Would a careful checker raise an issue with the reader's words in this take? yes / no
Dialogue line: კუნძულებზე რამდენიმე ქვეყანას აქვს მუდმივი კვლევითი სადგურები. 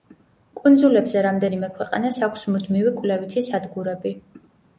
no